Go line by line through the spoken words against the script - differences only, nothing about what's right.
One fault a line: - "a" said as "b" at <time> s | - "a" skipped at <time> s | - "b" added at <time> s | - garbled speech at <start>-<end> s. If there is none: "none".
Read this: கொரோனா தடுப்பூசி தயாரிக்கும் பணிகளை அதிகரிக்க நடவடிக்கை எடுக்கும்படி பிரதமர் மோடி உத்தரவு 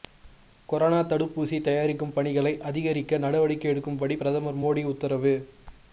none